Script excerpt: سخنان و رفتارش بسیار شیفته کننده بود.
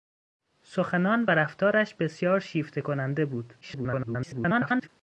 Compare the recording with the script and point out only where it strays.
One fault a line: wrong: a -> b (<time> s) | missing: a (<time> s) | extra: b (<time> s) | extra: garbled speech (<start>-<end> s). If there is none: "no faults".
extra: garbled speech (3.6-4.9 s)